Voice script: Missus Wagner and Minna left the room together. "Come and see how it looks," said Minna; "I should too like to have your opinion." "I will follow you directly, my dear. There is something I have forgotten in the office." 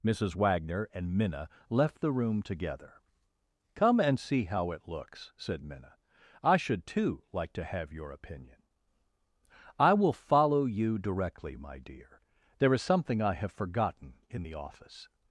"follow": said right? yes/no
yes